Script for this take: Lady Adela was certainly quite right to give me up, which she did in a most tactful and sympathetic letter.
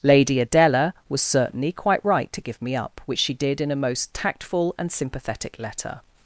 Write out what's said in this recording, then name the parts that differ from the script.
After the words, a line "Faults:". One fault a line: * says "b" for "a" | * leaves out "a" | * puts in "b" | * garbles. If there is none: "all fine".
Lady Adela was certainly quite right to give me up, which she did in a most tactful and sympathetic letter.
Faults:
all fine